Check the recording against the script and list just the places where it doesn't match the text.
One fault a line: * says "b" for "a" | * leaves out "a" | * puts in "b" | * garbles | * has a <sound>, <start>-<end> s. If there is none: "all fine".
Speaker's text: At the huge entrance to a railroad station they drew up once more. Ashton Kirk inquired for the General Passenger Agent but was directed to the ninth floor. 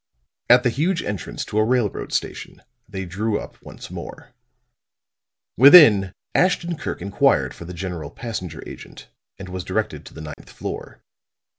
* puts in "Within"
* says "and" for "but"
* has a dropout, 10.3-10.4 s